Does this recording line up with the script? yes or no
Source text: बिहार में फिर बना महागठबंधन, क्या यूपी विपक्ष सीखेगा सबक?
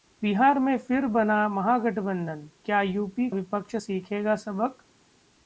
yes